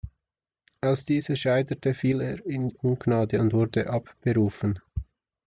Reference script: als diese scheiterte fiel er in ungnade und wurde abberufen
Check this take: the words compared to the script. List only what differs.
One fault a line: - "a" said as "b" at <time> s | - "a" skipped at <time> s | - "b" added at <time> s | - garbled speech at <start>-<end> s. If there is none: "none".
none